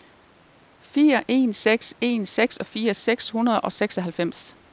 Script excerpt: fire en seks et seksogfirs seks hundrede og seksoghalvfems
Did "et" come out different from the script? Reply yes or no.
yes